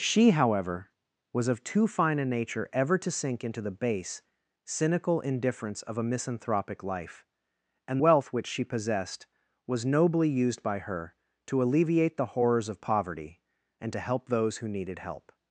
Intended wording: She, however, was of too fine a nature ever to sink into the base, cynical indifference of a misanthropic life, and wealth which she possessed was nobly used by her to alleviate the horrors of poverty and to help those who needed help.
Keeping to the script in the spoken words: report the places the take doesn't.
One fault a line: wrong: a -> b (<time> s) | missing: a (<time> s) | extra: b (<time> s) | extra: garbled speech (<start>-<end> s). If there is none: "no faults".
no faults